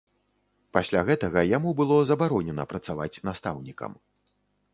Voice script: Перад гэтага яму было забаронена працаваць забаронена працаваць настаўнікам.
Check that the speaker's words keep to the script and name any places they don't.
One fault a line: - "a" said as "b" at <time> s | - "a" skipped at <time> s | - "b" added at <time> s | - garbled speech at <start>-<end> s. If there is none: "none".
- "Перад" said as "Пасля" at 0.8 s
- "забаронена працаваць" skipped at 3.2 s